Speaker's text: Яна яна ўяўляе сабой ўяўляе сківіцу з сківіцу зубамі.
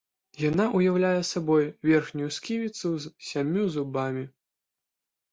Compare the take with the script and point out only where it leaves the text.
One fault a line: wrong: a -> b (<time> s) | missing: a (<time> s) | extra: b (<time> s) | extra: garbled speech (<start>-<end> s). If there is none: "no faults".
missing: яна (0.6 s)
wrong: ўяўляе -> верхнюю (1.9 s)
wrong: сківіцу -> сямю (3.3 s)